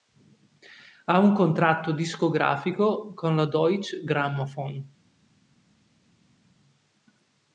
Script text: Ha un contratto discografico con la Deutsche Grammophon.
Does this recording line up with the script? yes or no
yes